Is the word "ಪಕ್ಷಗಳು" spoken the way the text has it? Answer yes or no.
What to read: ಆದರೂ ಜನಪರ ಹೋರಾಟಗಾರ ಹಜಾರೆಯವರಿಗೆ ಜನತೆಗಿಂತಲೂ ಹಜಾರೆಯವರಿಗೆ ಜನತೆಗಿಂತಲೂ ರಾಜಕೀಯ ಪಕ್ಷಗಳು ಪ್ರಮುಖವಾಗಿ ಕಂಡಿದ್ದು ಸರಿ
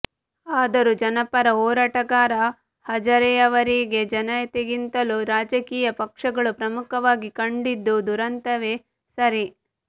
yes